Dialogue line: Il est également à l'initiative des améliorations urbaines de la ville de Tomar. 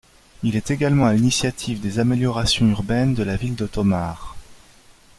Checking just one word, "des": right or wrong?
right